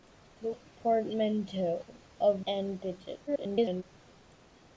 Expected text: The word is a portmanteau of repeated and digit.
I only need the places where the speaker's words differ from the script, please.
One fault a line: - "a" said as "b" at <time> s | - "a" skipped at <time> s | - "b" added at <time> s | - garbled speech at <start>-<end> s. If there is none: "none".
- "word is" skipped at 0.5 s
- "repeated" skipped at 2.4 s
- garbled speech at 3.3-3.8 s